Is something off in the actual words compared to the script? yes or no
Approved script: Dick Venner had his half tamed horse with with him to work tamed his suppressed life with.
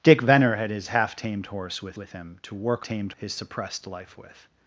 no